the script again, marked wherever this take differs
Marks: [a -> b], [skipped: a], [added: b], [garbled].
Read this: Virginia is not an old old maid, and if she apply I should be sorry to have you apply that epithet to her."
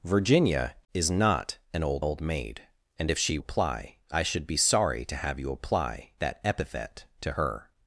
Virginia is not an old old maid, and if she apply I should be sorry to have you apply that epithet to her."